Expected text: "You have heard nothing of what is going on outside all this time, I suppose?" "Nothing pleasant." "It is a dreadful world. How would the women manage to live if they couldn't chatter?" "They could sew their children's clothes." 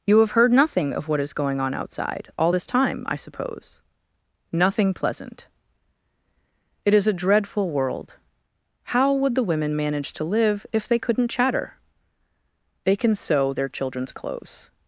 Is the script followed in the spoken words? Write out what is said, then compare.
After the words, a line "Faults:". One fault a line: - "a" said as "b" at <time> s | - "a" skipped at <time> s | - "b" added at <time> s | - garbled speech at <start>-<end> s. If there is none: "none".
"You have heard nothing of what is going on outside all this time, I suppose?" "Nothing pleasant." "It is a dreadful world. How would the women manage to live if they couldn't chatter?" "They can sew their children's clothes."
Faults:
- "could" said as "can" at 13.0 s